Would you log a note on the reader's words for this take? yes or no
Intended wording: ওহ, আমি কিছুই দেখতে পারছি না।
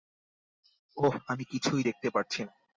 no